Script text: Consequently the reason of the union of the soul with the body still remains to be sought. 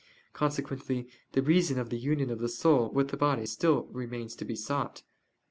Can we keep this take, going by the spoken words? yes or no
yes